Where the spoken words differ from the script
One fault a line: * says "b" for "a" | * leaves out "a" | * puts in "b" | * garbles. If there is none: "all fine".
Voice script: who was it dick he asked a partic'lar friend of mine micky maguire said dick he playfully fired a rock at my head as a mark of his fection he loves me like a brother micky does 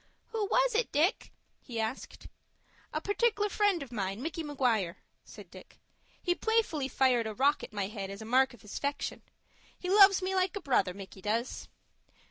all fine